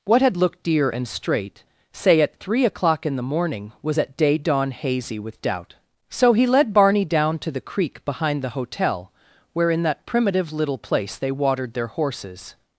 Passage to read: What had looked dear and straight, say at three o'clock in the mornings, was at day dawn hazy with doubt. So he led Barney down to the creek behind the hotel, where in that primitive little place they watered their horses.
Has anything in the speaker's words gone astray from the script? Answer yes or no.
yes